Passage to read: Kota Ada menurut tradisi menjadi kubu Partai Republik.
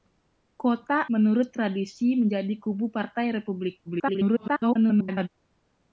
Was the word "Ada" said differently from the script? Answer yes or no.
yes